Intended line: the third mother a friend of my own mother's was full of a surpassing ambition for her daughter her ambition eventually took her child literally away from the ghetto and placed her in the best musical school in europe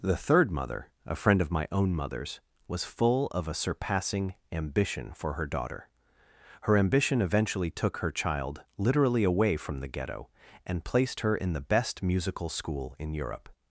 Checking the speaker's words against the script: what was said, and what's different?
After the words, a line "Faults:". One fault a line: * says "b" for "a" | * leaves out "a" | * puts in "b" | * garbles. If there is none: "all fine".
the third mother a friend of my own mother's was full of a surpassing ambition for her daughter her ambition eventually took her child literally away from the ghetto and placed her in the best musical school in europe
Faults:
all fine